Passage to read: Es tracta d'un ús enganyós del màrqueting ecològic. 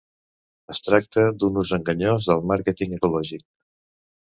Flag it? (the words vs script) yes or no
no